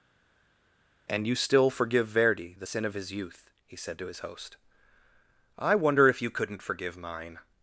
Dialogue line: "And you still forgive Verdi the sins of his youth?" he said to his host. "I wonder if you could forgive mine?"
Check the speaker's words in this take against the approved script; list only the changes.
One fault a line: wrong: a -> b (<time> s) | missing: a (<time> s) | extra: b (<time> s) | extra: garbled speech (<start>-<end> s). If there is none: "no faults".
wrong: sins -> sin (2.6 s)
wrong: could -> couldn't (6.3 s)